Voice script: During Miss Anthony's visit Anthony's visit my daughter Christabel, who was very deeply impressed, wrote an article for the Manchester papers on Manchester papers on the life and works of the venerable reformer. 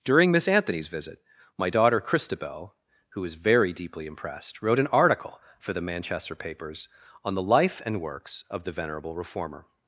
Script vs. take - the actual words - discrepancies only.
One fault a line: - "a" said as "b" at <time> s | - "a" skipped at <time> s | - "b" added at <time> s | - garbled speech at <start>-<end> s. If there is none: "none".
- "Anthony's visit" skipped at 1.2 s
- "Manchester papers on" skipped at 7.3 s